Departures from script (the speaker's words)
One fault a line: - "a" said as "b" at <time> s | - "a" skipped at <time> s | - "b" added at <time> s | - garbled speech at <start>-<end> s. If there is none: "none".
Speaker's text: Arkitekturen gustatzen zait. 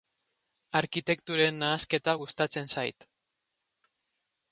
- "nahasketa" added at 1.6 s